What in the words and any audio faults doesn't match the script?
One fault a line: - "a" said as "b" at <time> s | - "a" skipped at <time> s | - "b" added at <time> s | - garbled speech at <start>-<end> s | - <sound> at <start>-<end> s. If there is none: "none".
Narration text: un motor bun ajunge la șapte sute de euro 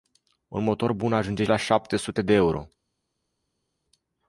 none